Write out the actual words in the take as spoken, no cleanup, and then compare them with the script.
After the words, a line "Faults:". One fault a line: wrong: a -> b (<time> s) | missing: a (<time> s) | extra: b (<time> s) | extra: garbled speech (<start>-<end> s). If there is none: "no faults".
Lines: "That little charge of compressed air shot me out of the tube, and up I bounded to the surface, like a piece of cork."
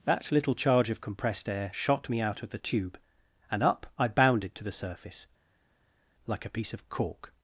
"That little charge of compressed air shot me out of the tube, and up I bounded to the surface, like a piece of cork."
Faults:
no faults